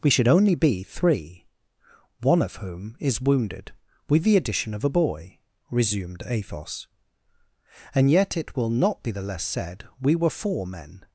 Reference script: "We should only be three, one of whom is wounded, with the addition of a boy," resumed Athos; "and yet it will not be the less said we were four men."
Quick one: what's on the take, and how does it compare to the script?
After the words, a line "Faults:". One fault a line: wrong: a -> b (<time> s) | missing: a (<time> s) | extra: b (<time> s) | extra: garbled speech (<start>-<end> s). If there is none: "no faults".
"We should only be three, one of whom is wounded, with the addition of a boy," resumed Athos; "and yet it will not be the less said we were four men."
Faults:
no faults